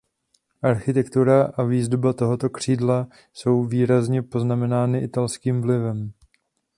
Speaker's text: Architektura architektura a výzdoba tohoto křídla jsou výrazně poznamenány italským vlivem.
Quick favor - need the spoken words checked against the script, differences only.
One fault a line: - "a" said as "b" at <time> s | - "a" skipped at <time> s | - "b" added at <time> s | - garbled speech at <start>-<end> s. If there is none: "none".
- "architektura" skipped at 1.5 s